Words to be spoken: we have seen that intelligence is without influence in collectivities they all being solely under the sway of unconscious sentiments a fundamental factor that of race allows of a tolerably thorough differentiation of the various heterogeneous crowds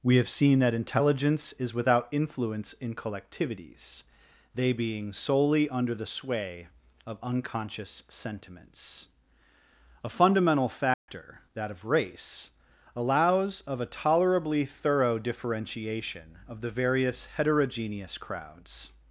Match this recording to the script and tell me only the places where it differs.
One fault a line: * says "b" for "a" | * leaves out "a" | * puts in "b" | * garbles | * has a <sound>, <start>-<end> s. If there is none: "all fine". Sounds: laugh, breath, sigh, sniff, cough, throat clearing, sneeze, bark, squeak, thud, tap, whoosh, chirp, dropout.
* leaves out "all"
* has a dropout, 10.9-11.1 s